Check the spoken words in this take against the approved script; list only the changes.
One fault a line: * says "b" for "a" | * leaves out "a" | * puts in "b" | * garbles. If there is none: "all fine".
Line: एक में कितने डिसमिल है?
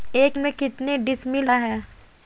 all fine